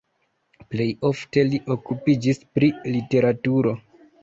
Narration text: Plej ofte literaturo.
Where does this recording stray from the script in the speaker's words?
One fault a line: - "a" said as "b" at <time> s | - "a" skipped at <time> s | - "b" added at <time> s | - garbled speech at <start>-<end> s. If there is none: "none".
- "li okupiĝis pri" added at 1.5 s